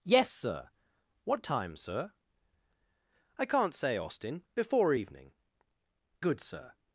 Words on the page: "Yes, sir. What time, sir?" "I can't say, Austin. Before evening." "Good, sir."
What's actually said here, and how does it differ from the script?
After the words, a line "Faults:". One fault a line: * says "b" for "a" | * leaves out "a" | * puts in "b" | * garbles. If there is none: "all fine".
"Yes, sir. What time, sir?" "I can't say, Austin. Before evening." "Good, sir."
Faults:
all fine